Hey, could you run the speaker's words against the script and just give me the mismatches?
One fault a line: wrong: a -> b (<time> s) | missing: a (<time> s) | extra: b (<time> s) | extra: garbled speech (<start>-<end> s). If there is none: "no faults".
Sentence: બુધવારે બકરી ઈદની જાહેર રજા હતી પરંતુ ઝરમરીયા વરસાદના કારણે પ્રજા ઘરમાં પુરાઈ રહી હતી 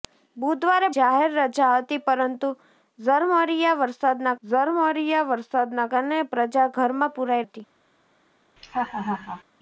missing: બકરી ઈદની (0.9 s)
extra: ઝરમરીયા વરસાદના (4.4 s)
missing: રહી (7.5 s)